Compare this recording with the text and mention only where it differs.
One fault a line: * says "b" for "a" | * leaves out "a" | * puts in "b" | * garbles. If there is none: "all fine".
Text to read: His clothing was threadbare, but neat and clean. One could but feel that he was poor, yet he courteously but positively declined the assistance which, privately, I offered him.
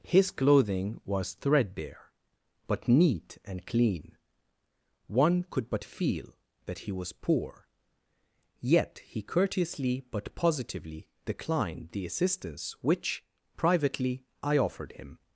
all fine